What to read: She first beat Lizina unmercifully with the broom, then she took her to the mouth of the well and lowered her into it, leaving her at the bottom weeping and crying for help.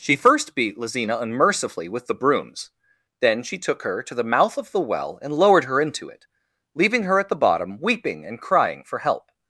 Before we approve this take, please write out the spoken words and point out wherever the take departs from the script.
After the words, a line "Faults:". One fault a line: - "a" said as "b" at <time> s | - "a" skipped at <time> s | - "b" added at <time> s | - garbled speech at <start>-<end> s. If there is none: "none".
She first beat Lizina unmercifully with the brooms, then she took her to the mouth of the well and lowered her into it, leaving her at the bottom weeping and crying for help.
Faults:
- "broom" said as "brooms" at 2.1 s